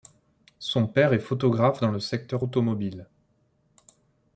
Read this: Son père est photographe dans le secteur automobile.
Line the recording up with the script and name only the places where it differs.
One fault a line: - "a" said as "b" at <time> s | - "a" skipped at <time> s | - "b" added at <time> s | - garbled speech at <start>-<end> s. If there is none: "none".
none